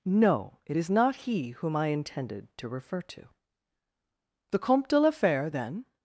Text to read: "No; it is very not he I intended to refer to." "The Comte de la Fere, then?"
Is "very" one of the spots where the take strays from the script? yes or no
yes